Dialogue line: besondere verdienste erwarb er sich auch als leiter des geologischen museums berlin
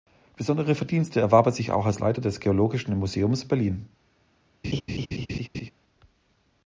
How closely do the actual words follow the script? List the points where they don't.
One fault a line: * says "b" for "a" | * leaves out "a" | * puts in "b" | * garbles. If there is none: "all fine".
all fine